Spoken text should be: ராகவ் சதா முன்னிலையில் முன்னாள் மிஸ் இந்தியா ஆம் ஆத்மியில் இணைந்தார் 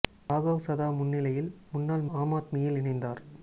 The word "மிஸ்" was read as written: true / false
false